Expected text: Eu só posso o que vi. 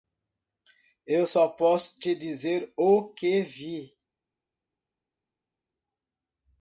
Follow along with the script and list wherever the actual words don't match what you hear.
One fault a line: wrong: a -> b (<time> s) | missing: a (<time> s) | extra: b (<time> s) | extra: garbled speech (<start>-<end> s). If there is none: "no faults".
extra: te dizer (2.0 s)